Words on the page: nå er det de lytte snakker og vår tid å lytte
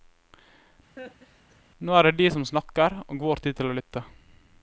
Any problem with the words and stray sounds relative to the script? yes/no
yes